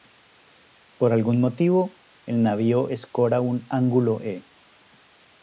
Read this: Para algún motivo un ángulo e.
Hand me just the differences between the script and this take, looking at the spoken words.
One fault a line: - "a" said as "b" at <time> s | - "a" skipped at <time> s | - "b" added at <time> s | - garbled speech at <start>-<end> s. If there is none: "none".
- "Para" said as "Por" at 1.0 s
- "el navío escora" added at 2.2 s